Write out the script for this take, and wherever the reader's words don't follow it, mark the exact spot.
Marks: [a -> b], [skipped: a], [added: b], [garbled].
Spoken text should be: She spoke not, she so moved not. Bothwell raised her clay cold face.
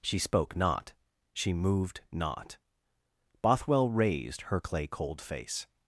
She spoke not, she [skipped: so] moved not. Bothwell raised her clay cold face.